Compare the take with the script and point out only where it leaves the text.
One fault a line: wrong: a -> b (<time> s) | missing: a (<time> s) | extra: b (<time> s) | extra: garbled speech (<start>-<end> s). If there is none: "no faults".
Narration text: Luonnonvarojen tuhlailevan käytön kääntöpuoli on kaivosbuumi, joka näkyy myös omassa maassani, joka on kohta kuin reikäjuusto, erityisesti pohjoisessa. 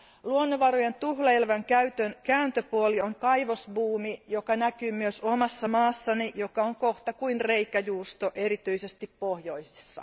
no faults